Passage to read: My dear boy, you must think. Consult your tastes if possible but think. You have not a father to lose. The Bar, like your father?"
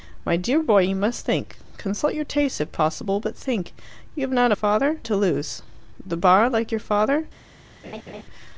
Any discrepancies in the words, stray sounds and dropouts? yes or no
yes